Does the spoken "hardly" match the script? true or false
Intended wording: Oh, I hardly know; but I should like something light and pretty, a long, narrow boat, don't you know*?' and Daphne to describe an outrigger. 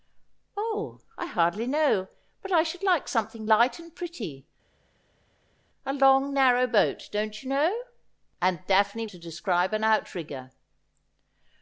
true